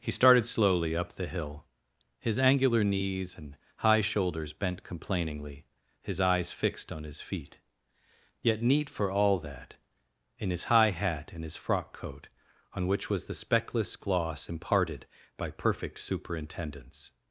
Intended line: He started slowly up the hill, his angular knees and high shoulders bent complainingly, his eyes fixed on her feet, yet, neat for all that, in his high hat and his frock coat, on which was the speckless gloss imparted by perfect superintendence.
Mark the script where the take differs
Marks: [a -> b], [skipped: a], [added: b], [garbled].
He started slowly up the hill, his angular knees and high shoulders bent complainingly, his eyes fixed on [her -> his] feet, yet, neat for all that, in his high hat and his frock coat, on which was the speckless gloss imparted by perfect superintendence.